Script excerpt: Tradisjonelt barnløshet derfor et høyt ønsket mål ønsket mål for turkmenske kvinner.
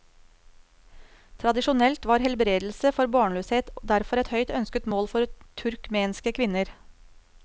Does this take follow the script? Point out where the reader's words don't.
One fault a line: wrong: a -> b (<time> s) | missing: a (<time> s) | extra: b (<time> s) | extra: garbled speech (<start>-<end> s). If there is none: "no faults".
extra: var helbredelse for (2.1 s)
missing: ønsket mål (5.1 s)